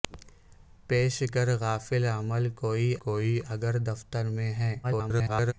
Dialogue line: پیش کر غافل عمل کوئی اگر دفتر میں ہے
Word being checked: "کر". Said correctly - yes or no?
yes